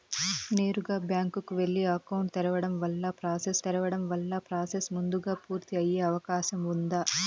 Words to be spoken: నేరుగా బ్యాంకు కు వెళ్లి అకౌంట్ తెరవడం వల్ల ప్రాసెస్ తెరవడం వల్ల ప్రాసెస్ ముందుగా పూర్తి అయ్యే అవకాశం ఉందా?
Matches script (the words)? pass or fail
pass